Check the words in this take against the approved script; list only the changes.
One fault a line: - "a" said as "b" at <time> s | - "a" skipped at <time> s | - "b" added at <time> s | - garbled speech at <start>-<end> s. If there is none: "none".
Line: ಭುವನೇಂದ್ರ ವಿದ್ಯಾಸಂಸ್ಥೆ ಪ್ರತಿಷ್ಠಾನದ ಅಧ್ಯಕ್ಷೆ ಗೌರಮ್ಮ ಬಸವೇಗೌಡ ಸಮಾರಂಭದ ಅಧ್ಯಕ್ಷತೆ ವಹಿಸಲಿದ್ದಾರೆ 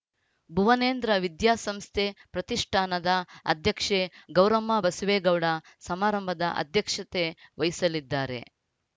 none